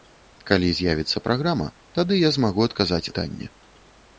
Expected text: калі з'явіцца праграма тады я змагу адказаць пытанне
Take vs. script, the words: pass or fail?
pass